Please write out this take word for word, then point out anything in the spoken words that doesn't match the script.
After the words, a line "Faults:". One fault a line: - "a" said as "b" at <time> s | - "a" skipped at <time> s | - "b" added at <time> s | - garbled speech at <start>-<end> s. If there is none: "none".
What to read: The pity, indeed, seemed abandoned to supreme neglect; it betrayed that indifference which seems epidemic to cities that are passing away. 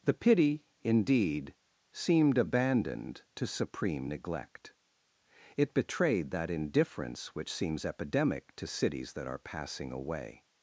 The pity, indeed, seemed abandoned to supreme neglect; it betrayed that indifference which seems epidemic to cities that are passing away.
Faults:
none